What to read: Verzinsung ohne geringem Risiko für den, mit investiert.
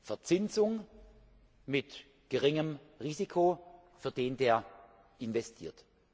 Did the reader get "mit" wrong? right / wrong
wrong